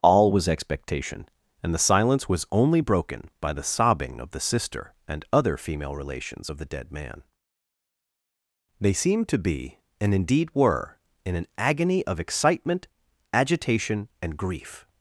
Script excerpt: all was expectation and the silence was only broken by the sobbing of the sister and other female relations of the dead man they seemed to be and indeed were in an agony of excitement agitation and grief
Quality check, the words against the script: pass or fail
pass